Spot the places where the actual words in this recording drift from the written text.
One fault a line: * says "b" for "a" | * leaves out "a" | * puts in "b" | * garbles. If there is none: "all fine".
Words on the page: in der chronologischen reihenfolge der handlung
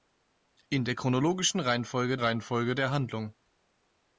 * puts in "reihenfolge"